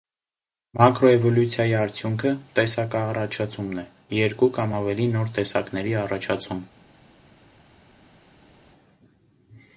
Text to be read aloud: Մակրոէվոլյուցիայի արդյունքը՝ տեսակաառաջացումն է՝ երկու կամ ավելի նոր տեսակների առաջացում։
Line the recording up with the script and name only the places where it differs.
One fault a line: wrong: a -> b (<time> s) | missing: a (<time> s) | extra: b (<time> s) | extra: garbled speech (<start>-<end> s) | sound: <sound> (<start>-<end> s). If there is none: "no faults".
no faults